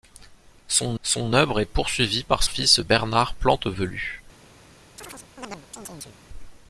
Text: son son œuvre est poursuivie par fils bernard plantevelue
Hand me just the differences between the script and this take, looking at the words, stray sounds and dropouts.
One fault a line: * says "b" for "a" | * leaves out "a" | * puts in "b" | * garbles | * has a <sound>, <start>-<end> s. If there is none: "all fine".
* has a chirp, 5.0-6.2 s